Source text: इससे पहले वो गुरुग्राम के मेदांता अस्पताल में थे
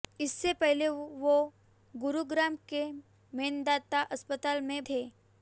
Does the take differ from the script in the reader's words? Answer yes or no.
no